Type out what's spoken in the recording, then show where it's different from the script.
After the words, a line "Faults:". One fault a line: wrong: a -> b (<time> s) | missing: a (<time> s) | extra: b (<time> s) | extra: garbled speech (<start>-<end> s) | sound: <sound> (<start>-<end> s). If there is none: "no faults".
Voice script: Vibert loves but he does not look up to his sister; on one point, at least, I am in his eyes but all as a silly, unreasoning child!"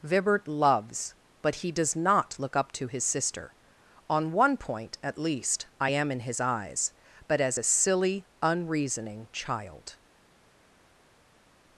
Vibert loves but he does not look up to his sister; on one point, at least, I am in his eyes but as a silly, unreasoning child!"
Faults:
missing: all (7.4 s)